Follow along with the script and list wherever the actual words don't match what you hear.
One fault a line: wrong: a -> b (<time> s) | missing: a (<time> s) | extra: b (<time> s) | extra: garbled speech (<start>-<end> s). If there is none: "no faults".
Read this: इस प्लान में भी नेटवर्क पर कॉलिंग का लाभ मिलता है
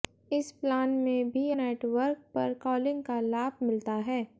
no faults